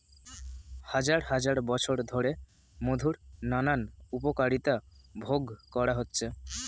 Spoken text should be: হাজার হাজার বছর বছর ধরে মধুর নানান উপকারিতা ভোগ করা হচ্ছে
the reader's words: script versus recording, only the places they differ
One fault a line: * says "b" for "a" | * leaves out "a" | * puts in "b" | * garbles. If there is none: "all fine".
* leaves out "বছর"